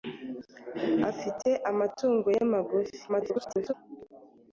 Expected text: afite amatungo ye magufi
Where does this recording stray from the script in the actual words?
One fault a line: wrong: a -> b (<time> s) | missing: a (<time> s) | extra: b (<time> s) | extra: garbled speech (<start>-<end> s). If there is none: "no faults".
extra: garbled speech (3.1-3.7 s)